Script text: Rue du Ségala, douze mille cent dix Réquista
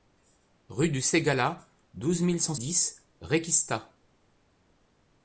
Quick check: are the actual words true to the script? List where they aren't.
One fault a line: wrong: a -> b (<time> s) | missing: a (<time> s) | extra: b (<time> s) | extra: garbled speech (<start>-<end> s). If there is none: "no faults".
no faults